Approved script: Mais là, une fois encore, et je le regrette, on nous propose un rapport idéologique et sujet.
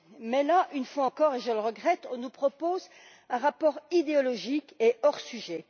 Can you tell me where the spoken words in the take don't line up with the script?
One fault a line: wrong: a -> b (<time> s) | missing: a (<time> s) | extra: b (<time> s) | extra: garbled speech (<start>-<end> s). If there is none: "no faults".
extra: hors (5.0 s)